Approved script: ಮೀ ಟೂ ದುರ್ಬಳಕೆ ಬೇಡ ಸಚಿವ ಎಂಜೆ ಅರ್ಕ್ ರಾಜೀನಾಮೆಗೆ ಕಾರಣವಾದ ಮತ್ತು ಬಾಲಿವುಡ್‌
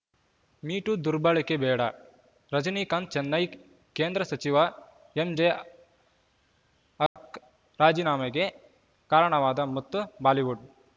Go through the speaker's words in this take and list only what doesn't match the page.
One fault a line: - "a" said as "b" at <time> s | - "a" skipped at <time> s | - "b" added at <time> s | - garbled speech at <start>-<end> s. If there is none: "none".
- "ರಜನೀಕಾಂತ್ ಚೆನ್ನೈ ಕೇಂದ್ರ" added at 2.5 s